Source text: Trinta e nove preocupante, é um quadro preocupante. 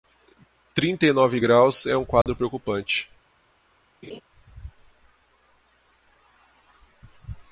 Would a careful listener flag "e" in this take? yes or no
no